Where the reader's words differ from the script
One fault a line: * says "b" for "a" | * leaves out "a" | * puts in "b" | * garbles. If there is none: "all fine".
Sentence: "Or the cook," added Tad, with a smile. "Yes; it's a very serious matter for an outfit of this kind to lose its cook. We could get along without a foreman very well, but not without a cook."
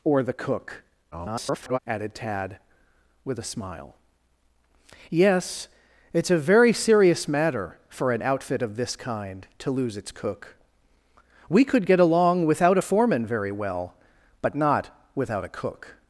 * garbles